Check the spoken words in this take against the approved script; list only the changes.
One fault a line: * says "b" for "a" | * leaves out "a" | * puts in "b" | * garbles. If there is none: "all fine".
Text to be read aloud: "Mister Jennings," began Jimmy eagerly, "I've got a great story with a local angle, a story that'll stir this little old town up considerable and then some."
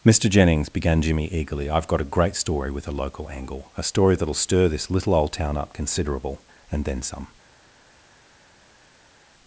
all fine